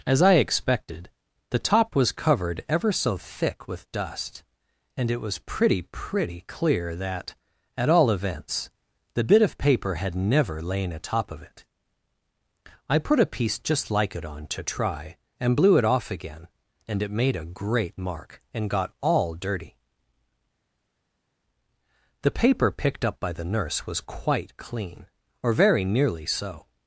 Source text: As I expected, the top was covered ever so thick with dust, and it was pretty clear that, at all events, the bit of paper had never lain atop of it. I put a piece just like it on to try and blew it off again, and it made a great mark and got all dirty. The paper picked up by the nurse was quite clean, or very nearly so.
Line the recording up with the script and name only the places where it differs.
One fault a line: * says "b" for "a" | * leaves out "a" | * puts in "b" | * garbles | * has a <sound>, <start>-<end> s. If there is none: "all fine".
* puts in "pretty"